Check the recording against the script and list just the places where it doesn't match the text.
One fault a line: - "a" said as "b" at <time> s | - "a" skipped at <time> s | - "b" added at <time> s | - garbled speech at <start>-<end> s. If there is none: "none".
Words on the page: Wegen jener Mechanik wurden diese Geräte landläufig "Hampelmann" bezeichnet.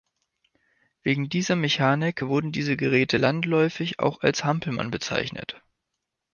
- "jener" said as "dieser" at 1.3 s
- "auch als" added at 4.0 s